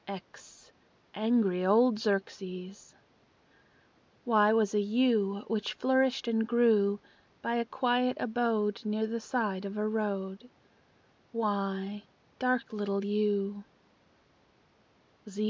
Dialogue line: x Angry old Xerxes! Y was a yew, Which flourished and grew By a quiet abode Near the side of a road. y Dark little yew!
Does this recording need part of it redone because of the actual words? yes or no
no